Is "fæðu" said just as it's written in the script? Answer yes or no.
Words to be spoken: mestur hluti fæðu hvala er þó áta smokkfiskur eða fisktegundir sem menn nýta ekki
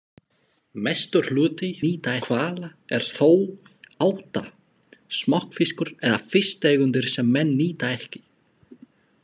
no